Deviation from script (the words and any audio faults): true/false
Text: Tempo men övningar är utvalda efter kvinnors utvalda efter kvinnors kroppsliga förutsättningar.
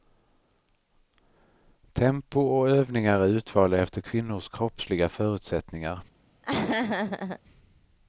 true